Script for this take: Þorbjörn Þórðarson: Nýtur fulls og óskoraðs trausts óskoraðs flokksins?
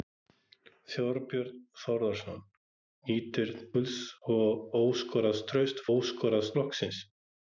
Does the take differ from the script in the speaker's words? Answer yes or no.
no